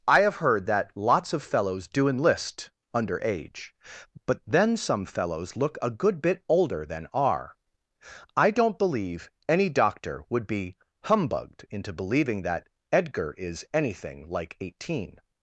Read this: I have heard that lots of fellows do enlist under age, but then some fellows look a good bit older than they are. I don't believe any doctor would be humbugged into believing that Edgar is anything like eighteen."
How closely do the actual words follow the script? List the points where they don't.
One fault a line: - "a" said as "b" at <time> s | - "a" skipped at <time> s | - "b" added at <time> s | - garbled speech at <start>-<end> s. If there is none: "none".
- "they" skipped at 7.1 s